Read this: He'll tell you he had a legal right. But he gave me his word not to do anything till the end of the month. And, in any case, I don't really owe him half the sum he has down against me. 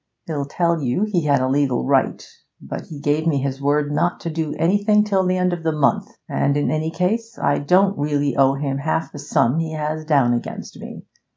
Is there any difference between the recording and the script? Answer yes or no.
no